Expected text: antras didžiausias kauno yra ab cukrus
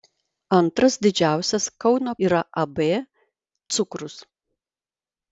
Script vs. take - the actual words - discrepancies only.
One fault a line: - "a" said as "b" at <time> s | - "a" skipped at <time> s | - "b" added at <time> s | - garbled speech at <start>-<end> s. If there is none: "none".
none